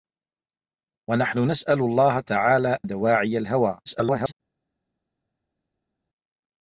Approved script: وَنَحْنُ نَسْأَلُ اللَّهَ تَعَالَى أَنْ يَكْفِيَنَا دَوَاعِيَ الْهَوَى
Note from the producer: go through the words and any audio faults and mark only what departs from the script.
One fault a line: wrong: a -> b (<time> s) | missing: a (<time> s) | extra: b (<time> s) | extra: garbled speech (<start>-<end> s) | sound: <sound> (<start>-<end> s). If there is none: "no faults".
missing: أَنْ يَكْفِيَنَا (2.8 s)
extra: garbled speech (3.9-4.3 s)